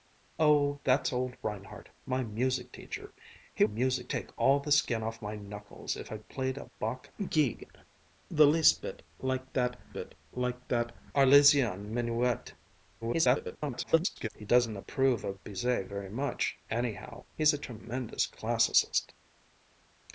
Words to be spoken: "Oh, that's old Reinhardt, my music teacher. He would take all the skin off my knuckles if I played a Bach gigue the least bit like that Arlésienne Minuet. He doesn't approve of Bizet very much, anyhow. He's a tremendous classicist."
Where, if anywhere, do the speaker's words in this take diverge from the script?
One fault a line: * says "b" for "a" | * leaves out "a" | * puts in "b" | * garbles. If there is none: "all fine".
* says "music" for "would"
* puts in "bit like that"
* garbles